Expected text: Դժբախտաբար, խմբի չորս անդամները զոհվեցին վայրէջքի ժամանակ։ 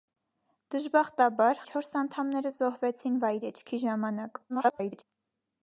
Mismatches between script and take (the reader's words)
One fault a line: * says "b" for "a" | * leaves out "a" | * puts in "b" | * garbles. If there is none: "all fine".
* leaves out "խմբի"
* garbles